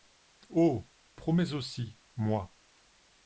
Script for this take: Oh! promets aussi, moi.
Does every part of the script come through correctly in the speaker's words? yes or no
yes